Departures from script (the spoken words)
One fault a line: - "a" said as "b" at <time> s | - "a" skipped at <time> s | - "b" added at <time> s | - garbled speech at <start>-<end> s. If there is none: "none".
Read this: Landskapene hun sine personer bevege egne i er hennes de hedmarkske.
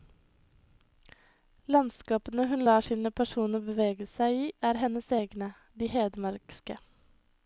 - "lar" added at 2.7 s
- "egne" said as "seg" at 4.1 s
- "egne" added at 5.2 s